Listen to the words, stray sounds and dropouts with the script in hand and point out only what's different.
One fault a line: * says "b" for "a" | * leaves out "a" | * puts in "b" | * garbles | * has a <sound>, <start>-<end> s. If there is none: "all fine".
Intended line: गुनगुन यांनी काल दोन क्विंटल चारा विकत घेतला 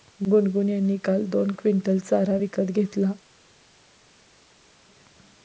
all fine